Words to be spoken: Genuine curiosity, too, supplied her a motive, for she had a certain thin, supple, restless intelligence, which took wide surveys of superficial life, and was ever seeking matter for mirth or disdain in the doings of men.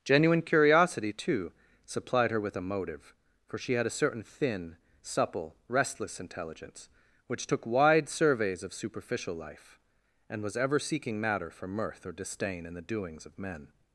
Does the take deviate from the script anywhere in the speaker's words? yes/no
yes